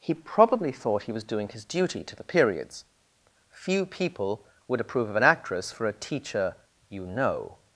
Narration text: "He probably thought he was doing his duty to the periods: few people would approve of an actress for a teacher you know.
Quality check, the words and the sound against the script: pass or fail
pass